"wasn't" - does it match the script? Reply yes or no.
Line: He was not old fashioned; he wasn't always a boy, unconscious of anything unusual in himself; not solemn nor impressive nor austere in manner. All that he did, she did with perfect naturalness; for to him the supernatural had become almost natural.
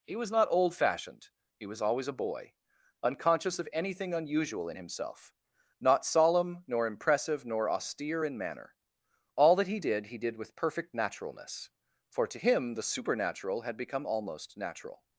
no